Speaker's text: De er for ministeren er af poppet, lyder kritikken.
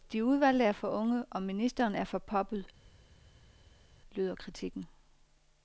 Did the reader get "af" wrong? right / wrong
wrong